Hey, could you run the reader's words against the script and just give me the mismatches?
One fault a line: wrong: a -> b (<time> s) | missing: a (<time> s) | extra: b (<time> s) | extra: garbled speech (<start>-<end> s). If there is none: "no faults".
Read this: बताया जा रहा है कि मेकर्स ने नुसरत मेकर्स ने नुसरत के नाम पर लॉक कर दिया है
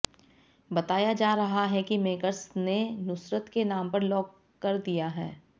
missing: मेकर्स ने नुसरत (3.5 s)